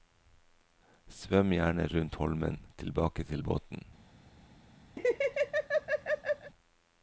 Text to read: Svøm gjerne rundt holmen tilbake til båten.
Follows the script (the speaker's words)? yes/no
yes